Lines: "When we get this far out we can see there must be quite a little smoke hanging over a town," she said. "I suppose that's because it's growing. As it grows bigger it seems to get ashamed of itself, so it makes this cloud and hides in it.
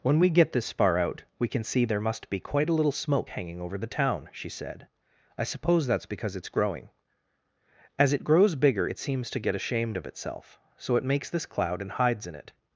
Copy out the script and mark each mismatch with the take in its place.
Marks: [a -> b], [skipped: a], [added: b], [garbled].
"When we get this far out we can see there must be quite a little smoke hanging over [a -> the] town," she said. "I suppose that's because it's growing. As it grows bigger it seems to get ashamed of itself, so it makes this cloud and hides in it.